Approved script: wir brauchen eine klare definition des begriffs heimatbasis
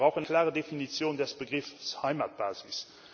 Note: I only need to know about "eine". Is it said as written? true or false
false